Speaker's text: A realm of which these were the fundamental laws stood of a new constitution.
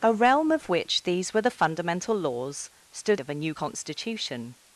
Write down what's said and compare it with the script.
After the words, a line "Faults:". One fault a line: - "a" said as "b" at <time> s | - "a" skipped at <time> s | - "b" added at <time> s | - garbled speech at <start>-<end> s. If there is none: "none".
A realm of which these were the fundamental laws stood of a new constitution.
Faults:
none